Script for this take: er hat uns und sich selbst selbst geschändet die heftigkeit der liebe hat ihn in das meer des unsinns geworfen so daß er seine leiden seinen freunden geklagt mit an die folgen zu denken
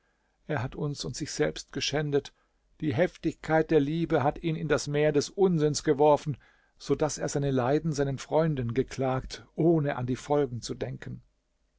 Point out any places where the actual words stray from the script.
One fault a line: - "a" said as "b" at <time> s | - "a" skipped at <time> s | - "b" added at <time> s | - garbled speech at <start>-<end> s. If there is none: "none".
- "selbst" skipped at 1.7 s
- "mit" said as "ohne" at 9.6 s